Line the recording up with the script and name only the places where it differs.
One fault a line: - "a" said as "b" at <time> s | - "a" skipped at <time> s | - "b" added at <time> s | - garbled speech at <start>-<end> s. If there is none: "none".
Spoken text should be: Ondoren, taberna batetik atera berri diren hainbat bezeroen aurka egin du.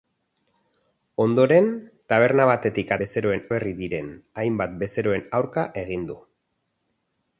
- "atera" said as "bezeroen" at 3.0 s